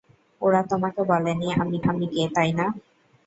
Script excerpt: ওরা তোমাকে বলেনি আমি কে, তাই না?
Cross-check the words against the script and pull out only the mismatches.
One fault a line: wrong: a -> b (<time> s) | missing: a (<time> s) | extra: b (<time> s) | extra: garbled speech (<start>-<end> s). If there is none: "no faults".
extra: আমি (1.8 s)